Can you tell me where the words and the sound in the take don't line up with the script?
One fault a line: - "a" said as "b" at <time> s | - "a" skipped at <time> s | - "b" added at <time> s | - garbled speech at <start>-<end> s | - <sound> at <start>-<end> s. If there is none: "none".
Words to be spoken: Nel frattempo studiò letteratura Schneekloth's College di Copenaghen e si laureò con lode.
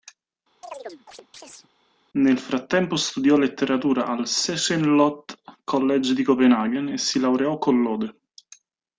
- chirp at 0.6-1.7 s
- "al" added at 4.0 s